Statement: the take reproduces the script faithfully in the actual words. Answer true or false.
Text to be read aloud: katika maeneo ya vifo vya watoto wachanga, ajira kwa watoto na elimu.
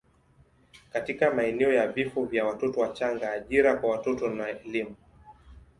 true